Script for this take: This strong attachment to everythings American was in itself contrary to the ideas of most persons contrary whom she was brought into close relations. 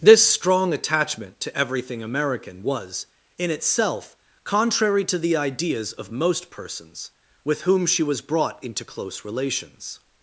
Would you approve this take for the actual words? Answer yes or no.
no